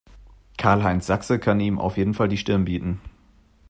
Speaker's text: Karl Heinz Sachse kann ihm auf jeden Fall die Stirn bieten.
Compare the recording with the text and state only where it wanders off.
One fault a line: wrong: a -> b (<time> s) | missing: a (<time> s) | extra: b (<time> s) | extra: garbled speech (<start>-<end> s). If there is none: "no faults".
no faults